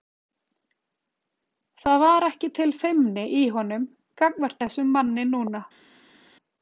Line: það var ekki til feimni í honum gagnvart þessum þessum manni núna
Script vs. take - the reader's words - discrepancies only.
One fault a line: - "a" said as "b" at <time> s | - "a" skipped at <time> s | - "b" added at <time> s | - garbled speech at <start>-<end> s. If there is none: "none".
- "þessum" skipped at 5.0 s